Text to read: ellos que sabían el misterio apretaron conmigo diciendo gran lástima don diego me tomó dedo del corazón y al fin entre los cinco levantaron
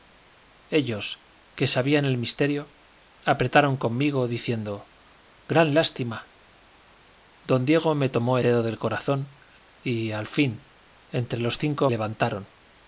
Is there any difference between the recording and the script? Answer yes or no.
no